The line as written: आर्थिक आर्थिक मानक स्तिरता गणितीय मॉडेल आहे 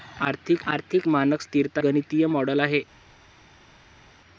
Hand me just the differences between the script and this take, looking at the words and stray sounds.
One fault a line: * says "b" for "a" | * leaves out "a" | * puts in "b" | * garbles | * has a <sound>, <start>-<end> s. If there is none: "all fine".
all fine